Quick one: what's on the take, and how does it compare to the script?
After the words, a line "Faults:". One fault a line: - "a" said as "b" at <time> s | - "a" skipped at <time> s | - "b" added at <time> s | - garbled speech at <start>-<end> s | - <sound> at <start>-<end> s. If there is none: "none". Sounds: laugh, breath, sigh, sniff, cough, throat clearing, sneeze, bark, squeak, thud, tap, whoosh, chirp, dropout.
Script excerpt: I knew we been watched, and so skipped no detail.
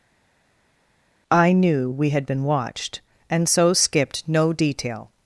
I knew we had been watched, and so skipped no detail.
Faults:
- "had" added at 2.1 s